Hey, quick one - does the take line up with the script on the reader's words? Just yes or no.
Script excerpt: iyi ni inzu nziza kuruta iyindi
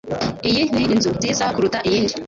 yes